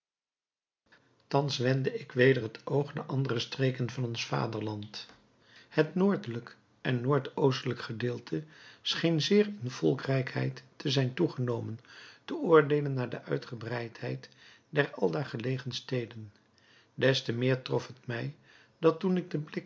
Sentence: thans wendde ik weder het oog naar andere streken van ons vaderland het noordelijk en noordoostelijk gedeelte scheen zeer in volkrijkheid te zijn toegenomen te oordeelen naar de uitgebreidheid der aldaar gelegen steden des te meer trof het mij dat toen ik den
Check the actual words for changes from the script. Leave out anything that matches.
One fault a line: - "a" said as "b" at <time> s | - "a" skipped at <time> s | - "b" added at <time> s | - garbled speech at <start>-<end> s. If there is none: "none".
none